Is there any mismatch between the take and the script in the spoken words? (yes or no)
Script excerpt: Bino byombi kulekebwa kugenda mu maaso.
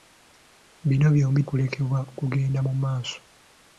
no